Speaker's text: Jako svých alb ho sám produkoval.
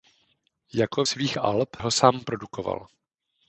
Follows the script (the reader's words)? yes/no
yes